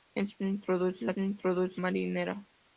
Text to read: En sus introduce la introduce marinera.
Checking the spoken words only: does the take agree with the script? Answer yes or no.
yes